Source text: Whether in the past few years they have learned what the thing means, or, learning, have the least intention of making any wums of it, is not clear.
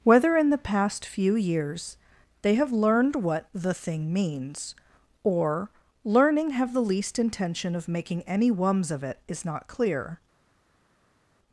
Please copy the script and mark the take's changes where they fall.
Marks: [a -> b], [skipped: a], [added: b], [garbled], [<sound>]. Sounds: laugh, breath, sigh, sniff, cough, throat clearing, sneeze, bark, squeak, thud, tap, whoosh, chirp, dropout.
Whether in the past few years they have learned what the thing means, or, learning, have the least intention of making any wums of it, is not clear.